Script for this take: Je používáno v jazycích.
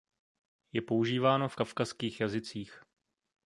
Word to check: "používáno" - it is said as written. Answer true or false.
true